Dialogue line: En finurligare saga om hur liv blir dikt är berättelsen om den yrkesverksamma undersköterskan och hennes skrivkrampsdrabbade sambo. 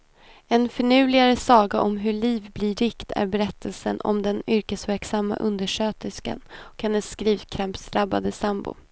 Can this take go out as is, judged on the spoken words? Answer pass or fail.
pass